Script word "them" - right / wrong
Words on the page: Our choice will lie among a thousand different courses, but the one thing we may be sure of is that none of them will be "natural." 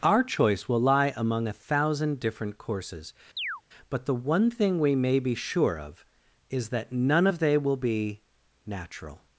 wrong